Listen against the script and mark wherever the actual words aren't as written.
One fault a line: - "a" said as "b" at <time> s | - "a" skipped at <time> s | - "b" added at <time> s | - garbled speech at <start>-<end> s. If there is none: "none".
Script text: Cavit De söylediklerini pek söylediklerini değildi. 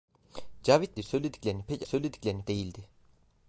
none